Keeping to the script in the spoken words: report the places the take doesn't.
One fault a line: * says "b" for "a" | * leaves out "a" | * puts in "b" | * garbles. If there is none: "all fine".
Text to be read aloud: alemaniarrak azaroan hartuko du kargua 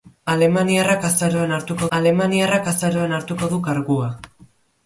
* puts in "alemaniarrak azaroan hartuko"